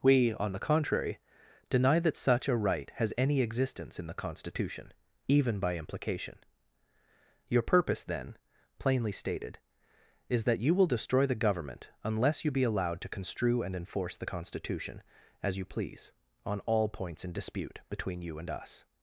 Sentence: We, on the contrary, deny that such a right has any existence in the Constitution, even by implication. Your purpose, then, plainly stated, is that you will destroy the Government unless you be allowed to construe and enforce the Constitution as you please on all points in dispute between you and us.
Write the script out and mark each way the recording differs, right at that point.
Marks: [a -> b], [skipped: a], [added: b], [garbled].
We, on the contrary, deny that such a right has any existence in the Constitution, even by implication. Your purpose, then, plainly stated, is that you will destroy the Government unless you be allowed to construe and enforce the Constitution as you please on all points in dispute between you and us.